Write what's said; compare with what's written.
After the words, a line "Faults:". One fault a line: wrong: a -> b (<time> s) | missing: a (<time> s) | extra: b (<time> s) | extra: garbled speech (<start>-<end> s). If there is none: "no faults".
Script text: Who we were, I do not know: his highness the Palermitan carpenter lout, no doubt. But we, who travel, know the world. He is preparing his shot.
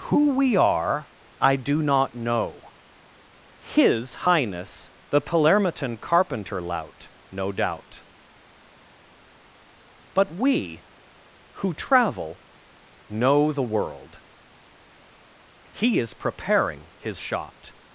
Who we are, I do not know: his highness the Palermitan carpenter lout, no doubt. But we, who travel, know the world. He is preparing his shot.
Faults:
wrong: were -> are (0.6 s)